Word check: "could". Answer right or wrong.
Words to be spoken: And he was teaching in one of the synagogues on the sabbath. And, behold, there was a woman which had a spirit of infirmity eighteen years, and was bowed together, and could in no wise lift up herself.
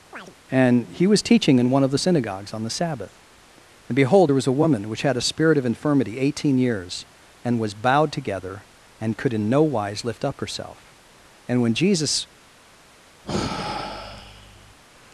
right